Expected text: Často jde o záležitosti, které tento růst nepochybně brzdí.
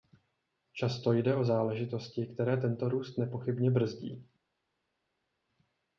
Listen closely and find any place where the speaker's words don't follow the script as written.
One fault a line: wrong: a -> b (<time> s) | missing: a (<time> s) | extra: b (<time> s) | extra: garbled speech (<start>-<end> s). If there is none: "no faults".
no faults